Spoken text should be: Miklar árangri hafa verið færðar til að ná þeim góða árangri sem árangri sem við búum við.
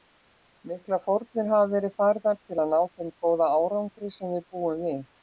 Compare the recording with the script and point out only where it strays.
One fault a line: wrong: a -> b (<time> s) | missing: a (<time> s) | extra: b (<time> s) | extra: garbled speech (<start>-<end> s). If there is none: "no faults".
wrong: árangri -> fórnir (1.0 s)
missing: árangri sem (4.3 s)